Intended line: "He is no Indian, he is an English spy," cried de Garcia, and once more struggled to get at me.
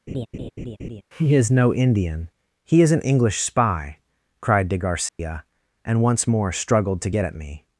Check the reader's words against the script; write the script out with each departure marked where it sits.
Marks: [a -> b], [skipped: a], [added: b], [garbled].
"He is no Indian, he is an English spy," cried de Garcia, and once more struggled to get at me.